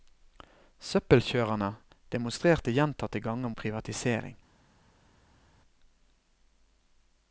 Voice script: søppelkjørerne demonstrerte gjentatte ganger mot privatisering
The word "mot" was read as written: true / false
false